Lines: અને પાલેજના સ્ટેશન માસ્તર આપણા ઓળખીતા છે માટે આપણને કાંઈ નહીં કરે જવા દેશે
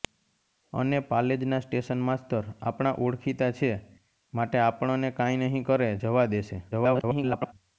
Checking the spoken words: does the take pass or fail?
fail